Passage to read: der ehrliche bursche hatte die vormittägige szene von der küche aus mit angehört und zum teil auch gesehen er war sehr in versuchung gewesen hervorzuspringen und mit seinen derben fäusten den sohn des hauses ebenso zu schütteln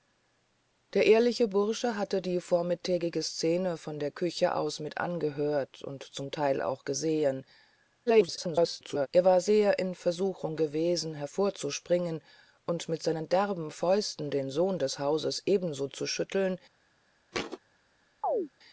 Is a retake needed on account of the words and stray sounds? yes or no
yes